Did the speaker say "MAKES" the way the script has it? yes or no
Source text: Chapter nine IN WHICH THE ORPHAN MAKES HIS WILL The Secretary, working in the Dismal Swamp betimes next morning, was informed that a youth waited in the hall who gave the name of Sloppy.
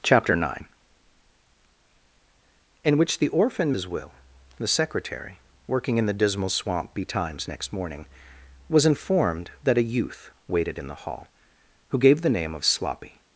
no